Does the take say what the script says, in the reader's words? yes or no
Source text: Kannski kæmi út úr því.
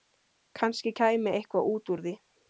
no